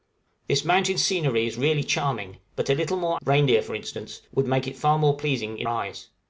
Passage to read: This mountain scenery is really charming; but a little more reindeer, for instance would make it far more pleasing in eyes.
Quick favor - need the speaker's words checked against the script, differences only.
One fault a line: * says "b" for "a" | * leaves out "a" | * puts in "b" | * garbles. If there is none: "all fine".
all fine